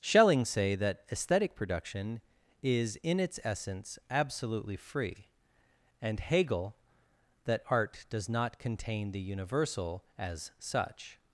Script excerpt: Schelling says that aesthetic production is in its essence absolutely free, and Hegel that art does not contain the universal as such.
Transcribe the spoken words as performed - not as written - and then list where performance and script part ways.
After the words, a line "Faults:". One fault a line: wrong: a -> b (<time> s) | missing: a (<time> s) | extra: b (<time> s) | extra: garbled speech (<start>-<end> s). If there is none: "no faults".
Schelling say that aesthetic production is in its essence absolutely free, and Hegel that art does not contain the universal as such.
Faults:
wrong: says -> say (0.5 s)